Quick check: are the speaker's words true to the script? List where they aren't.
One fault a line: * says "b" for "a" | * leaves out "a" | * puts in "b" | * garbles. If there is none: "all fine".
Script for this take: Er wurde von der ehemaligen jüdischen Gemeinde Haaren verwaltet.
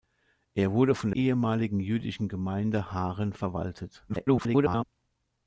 * leaves out "der"
* garbles